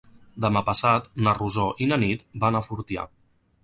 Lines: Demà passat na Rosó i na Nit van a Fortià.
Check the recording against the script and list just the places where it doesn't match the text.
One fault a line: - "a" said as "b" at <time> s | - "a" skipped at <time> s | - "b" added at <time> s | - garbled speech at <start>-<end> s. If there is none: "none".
none